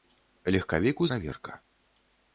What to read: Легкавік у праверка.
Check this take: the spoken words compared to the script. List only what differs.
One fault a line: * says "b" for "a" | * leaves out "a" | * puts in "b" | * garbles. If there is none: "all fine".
all fine